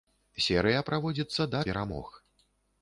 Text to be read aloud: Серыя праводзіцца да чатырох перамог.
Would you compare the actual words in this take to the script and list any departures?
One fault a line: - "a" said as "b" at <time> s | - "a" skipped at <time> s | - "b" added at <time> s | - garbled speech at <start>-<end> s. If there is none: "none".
- "чатырох" skipped at 1.6 s